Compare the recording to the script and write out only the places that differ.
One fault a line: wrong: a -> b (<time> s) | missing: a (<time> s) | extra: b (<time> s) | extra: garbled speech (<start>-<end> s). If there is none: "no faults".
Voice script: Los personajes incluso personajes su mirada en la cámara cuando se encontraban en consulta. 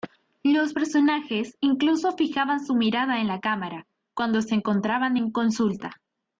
wrong: personajes -> fijaban (2.2 s)